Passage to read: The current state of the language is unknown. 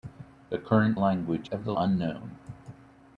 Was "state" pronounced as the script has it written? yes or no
no